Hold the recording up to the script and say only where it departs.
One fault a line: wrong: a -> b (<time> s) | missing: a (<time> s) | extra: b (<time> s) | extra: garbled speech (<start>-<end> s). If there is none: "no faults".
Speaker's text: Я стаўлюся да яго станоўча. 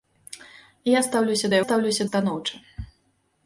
wrong: яго -> стаўлюся (1.6 s)